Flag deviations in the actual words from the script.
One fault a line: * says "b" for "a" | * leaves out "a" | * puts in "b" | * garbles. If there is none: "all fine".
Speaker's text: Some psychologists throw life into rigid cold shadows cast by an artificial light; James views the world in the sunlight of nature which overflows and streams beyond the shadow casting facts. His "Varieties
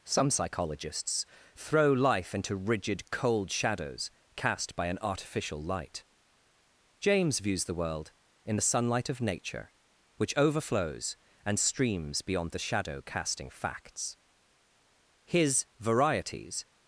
all fine